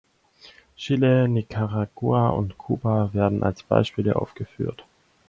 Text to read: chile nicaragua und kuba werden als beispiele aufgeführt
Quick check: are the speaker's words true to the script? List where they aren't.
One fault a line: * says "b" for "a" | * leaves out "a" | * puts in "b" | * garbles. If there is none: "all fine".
all fine